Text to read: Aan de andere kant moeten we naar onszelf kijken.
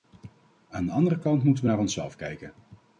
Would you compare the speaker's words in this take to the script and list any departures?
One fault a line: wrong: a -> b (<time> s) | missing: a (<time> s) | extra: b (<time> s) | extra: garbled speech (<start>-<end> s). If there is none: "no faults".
no faults